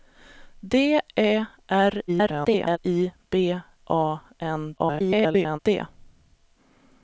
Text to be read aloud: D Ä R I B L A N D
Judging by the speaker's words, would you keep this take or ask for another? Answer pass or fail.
fail